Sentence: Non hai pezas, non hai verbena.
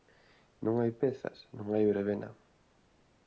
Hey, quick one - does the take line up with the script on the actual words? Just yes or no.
yes